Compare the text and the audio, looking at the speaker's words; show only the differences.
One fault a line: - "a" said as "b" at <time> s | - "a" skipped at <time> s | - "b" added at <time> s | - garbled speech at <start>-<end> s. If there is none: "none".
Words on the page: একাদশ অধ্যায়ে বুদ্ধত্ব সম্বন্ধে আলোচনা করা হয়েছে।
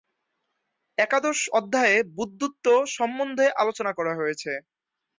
none